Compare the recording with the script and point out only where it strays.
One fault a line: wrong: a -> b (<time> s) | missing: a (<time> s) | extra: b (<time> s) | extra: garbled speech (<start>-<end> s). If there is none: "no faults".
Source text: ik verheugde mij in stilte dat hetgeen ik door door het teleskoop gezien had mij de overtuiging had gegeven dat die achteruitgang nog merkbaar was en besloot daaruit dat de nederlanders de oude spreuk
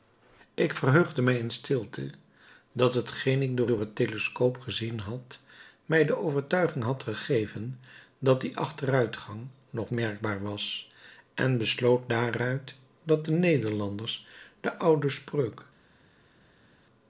no faults